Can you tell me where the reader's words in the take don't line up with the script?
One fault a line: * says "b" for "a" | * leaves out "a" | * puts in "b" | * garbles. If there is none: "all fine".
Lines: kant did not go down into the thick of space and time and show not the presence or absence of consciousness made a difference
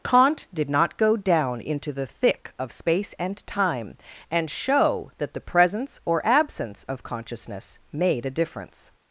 * says "that" for "not"